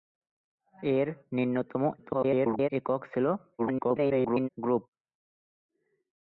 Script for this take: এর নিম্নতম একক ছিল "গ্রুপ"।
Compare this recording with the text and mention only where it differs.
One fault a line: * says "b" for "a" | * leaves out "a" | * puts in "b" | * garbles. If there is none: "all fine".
* garbles
* garbles